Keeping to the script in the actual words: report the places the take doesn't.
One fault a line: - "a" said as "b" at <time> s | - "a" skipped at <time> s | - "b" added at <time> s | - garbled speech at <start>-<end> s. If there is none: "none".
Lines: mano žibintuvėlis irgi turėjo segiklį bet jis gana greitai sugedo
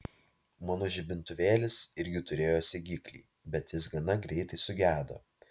none